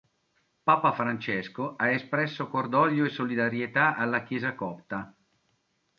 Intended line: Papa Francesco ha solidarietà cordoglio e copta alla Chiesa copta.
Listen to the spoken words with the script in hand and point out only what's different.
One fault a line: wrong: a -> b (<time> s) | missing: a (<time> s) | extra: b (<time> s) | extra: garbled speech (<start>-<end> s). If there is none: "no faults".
wrong: solidarietà -> espresso (1.9 s)
wrong: copta -> solidarietà (3.1 s)